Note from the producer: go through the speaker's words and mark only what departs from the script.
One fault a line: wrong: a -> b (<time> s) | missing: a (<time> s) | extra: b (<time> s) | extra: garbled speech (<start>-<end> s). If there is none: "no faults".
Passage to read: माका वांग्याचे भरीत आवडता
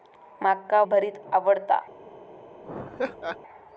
missing: वांग्याचे (0.8 s)